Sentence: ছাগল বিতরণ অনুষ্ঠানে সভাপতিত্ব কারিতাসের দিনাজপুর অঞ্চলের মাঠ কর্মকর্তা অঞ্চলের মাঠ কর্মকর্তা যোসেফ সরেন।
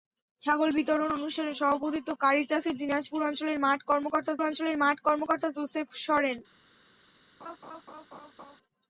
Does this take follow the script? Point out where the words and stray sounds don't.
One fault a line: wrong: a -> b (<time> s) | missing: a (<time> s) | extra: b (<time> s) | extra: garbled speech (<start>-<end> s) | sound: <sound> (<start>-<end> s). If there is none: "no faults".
sound: laugh (7.4-8.6 s)